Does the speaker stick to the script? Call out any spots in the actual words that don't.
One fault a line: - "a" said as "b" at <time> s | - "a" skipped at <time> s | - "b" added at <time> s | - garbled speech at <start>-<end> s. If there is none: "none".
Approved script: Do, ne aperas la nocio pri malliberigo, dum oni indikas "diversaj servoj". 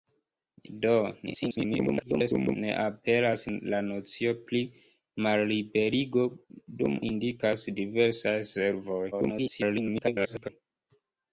- garbled speech at 1.3-2.6 s
- "oni" skipped at 7.0 s
- garbled speech at 9.1-10.5 s